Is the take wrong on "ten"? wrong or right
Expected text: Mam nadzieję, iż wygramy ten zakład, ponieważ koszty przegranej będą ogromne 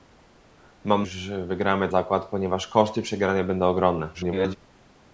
wrong